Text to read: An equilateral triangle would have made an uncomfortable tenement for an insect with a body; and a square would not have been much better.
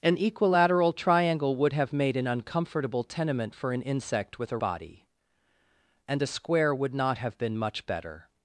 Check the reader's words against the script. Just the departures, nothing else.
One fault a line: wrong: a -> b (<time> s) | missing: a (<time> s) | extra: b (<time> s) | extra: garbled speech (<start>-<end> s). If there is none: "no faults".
no faults